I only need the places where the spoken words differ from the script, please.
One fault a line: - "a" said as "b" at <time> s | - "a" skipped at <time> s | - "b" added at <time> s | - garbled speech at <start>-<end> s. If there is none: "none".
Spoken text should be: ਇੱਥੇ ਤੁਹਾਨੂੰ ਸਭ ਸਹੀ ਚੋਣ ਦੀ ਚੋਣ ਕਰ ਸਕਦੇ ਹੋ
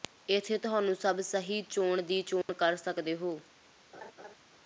none